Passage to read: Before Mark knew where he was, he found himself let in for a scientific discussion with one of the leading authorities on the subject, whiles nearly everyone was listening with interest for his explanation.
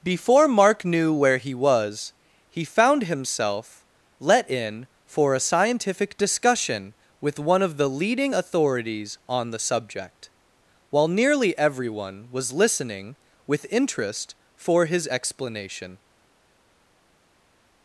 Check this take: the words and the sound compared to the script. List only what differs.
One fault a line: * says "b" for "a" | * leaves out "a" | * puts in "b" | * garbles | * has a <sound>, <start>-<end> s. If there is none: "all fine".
* says "while" for "whiles"